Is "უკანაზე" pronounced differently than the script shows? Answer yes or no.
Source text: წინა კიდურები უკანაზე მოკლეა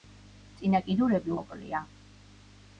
yes